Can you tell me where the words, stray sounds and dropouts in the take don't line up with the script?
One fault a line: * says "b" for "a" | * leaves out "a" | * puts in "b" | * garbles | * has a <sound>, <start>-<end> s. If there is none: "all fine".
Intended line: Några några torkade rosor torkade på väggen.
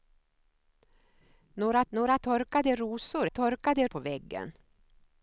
all fine